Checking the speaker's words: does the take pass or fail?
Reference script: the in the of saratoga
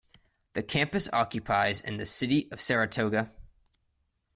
fail